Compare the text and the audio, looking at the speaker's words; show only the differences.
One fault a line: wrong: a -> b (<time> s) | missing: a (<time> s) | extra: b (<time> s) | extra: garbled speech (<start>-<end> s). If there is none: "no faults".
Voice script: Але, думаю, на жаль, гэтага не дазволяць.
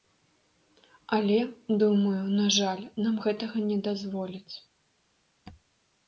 extra: нам (3.1 s)